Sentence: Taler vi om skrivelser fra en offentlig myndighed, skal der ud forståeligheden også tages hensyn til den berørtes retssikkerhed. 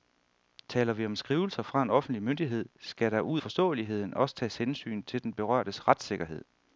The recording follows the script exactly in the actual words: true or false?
true